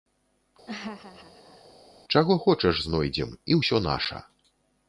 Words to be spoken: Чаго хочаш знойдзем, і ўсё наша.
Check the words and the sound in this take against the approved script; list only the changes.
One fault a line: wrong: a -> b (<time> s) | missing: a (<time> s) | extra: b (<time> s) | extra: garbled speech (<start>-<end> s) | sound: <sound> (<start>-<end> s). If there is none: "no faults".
sound: laugh (0.7-1.7 s)